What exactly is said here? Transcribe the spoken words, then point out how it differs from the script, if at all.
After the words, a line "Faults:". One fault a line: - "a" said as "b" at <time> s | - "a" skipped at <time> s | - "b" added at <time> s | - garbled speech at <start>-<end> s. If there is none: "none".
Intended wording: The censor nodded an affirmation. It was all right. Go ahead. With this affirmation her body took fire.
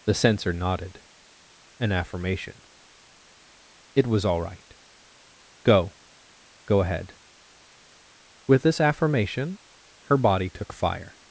The censor nodded an affirmation. It was all right. Go Go ahead. With this affirmation her body took fire.
Faults:
- "Go" added at 6.7 s